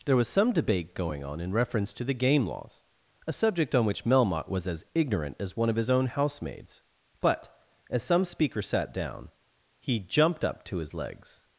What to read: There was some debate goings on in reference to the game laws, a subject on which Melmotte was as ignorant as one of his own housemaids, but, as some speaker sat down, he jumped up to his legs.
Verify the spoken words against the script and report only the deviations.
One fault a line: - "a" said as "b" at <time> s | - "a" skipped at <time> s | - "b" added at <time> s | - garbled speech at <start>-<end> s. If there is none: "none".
- "goings" said as "going" at 0.9 s